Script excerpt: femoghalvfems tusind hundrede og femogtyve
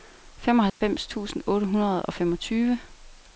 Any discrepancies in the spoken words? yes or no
yes